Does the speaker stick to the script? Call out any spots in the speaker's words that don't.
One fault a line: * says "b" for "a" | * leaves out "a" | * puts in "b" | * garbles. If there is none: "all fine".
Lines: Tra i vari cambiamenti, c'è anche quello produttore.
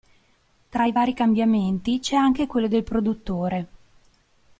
* puts in "del"